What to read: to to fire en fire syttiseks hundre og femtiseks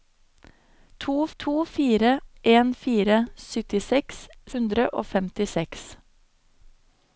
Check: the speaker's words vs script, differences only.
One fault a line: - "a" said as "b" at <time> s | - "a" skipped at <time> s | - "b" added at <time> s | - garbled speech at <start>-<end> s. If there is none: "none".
none